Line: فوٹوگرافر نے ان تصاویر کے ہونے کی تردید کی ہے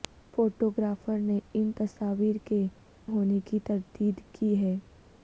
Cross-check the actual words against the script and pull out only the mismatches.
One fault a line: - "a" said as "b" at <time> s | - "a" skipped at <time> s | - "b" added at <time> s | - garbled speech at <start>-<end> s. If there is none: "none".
none